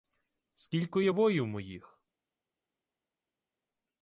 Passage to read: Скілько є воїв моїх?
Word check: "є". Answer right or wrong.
right